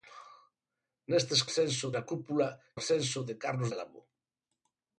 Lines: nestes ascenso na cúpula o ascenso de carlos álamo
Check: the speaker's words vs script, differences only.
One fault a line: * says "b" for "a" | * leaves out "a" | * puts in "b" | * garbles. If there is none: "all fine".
all fine